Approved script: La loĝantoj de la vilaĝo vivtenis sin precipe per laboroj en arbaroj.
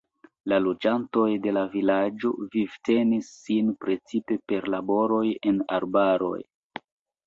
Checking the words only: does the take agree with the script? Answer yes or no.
yes